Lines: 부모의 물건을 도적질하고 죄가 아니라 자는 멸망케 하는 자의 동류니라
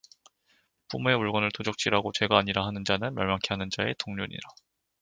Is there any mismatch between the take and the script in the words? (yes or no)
yes